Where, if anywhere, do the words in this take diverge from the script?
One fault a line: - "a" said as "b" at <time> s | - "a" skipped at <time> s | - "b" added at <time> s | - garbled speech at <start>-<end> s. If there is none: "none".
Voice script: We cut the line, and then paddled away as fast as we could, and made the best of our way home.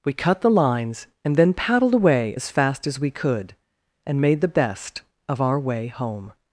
- "line" said as "lines" at 0.5 s